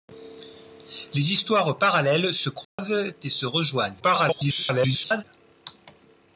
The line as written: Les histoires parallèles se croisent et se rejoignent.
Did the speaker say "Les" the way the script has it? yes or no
yes